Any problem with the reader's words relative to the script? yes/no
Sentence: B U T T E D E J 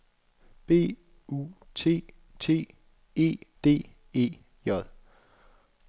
no